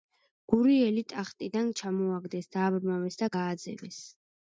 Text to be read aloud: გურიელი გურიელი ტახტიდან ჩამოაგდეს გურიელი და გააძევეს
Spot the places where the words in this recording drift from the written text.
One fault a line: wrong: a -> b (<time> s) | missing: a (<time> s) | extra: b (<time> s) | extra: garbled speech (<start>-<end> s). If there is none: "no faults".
missing: გურიელი (1.0 s)
wrong: გურიელი -> დააბრმავეს (2.6 s)